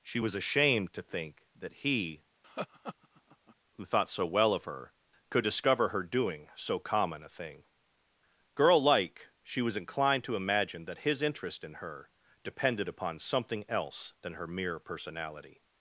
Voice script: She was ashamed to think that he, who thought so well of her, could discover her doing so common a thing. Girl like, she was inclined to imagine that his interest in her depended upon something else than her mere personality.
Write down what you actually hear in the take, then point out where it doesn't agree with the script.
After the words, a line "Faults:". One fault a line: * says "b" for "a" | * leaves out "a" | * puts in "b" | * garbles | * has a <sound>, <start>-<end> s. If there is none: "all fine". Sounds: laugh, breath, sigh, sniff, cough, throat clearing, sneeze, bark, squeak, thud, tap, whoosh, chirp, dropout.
She was ashamed to think that he, who thought so well of her, could discover her doing so common a thing. Girl like, she was inclined to imagine that his interest in her depended upon something else than her mere personality.
Faults:
* has a laugh, 2.4-3.6 s